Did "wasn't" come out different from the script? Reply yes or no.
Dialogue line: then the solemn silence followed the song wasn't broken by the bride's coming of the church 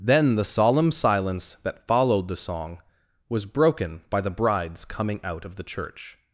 yes